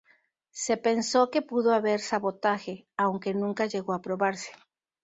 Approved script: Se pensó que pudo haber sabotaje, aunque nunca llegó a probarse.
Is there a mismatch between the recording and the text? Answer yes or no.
no